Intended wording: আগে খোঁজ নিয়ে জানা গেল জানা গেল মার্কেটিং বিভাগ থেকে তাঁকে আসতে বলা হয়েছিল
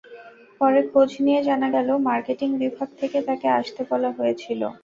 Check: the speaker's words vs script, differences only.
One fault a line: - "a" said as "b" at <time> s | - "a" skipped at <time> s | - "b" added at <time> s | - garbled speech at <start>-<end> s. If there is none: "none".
- "আগে" said as "পরে" at 0.6 s
- "জানা গেল" skipped at 1.9 s